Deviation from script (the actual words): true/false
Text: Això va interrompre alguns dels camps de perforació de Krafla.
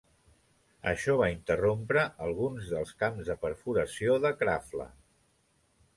false